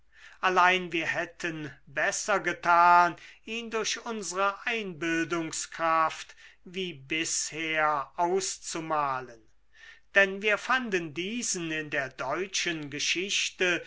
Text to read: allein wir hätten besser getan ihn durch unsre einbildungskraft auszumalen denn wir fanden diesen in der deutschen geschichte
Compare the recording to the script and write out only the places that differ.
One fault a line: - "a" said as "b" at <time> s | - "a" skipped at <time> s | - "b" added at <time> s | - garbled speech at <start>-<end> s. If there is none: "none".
- "wie bisher" added at 6.6 s